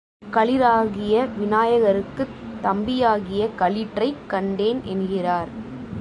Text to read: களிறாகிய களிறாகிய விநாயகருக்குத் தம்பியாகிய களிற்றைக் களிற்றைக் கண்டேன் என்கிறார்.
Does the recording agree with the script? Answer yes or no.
no